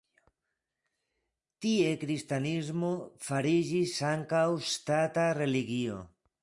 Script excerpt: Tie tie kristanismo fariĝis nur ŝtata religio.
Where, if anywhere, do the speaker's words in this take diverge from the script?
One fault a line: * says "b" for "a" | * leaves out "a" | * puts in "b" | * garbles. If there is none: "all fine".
* leaves out "tie"
* says "ankaŭ" for "nur"